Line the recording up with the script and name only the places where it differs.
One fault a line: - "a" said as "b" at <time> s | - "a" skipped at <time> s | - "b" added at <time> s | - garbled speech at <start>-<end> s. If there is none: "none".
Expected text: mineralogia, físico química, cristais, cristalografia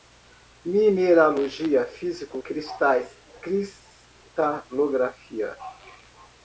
- "química" skipped at 2.4 s